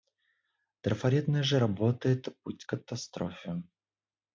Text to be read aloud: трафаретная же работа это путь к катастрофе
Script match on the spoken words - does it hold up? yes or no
yes